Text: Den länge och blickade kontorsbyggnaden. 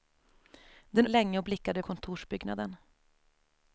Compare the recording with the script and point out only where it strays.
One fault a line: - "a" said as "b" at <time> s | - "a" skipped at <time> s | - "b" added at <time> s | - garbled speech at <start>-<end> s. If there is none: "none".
none